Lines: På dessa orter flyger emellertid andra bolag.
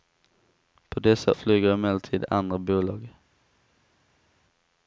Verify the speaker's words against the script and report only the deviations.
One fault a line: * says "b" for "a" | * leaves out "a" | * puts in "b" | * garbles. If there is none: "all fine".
* leaves out "orter"